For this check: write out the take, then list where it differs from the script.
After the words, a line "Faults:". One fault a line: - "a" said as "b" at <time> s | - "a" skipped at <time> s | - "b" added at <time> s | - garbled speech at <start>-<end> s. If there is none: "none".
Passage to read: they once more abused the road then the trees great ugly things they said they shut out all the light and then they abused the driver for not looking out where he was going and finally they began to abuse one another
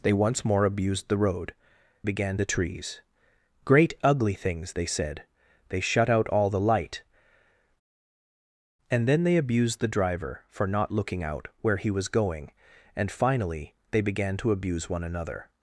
they once more abused the road began the trees great ugly things they said they shut out all the light and then they abused the driver for not looking out where he was going and finally they began to abuse one another
Faults:
- "then" said as "began" at 2.0 s